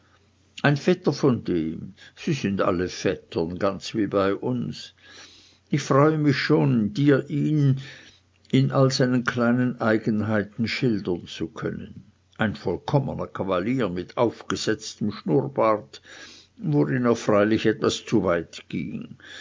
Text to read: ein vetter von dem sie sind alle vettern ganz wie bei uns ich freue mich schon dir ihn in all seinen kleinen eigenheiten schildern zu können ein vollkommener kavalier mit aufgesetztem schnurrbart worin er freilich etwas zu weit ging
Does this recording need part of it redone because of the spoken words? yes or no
no